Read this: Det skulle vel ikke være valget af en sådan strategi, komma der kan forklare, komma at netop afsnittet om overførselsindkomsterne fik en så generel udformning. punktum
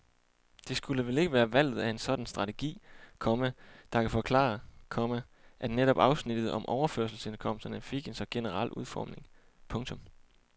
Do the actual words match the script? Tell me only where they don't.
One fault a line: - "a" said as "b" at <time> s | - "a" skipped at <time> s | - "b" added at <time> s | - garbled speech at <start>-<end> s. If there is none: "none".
none